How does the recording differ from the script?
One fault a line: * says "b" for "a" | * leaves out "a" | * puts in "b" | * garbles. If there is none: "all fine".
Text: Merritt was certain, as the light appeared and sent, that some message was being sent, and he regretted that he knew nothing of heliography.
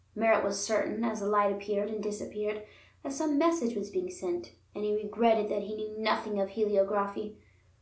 * says "disappeared" for "sent"